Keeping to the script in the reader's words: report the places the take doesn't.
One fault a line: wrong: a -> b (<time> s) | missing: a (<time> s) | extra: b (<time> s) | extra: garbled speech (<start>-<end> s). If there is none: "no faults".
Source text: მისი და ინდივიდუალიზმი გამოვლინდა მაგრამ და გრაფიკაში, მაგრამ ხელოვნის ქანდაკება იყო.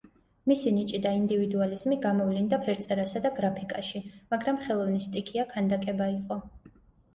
extra: ნიჭი (0.8 s)
wrong: მაგრამ -> ფერწერასა (2.6 s)
extra: სტიქია (5.1 s)